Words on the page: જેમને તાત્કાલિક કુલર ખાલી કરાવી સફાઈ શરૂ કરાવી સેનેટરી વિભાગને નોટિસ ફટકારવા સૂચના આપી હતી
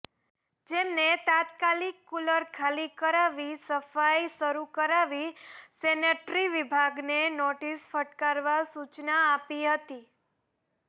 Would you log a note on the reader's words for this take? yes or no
no